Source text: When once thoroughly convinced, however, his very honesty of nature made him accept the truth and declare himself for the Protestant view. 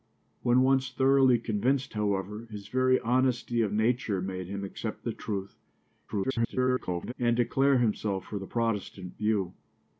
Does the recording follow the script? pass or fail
fail